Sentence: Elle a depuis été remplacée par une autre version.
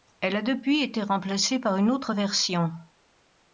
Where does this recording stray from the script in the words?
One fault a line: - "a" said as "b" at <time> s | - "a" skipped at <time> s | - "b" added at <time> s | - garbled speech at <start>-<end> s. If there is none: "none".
none